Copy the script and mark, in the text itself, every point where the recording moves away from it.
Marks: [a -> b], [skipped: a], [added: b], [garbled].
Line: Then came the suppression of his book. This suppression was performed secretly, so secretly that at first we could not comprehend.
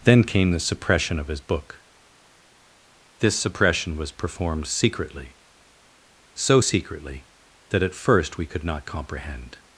Then came the suppression of his book. This suppression was performed secretly, so secretly that at first we could not comprehend.